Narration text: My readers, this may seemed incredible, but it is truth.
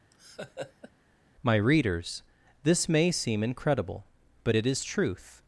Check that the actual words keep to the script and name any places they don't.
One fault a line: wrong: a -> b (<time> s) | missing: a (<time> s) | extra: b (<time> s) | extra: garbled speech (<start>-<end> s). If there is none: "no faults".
wrong: seemed -> seem (3.1 s)